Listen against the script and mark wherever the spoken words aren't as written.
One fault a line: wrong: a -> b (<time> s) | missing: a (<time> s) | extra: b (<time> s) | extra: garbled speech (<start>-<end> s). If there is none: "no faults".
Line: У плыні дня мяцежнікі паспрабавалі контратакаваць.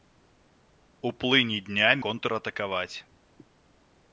missing: мяцежнікі паспрабавалі (1.9 s)